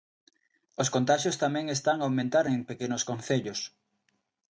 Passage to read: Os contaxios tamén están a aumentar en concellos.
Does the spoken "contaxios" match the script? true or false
true